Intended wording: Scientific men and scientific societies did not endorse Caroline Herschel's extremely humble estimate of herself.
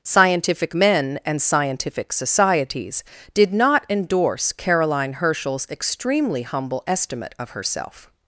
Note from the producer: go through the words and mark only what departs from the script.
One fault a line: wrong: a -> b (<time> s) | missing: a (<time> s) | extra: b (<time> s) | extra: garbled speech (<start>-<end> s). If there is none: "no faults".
no faults